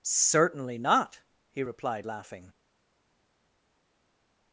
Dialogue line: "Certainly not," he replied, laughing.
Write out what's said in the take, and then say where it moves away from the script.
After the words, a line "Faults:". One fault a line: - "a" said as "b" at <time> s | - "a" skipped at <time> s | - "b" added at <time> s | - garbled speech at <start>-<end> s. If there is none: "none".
"Certainly not," he replied, laughing.
Faults:
none